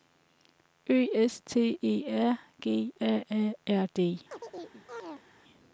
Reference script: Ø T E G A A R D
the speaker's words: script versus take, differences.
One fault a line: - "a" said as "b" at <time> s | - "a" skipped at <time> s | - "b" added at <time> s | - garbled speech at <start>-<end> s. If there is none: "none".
- "S" added at 1.3 s
- "R" added at 2.1 s